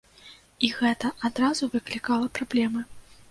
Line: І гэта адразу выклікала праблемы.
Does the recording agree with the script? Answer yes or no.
yes